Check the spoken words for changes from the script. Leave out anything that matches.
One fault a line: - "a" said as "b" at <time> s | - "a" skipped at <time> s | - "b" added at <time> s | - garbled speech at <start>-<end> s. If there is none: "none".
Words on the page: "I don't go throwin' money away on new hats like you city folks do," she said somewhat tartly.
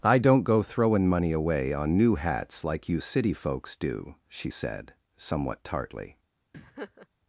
none